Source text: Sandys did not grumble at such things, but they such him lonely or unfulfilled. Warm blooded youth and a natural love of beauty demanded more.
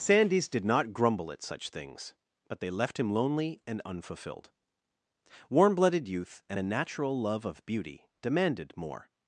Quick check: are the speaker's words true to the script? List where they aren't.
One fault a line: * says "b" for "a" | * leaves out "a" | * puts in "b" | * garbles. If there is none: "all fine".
* says "left" for "such"
* says "and" for "or"